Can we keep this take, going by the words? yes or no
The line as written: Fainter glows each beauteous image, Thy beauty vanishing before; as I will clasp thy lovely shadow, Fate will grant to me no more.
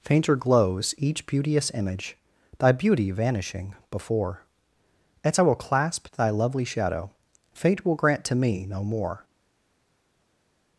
yes